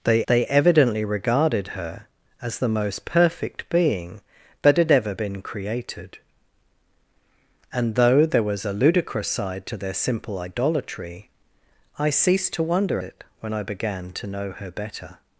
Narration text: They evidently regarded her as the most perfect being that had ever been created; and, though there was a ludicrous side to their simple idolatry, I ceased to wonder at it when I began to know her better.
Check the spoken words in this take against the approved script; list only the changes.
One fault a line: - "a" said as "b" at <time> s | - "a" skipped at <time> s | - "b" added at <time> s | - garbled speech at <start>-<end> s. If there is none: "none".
- "they" added at 0.3 s
- "at" skipped at 13.0 s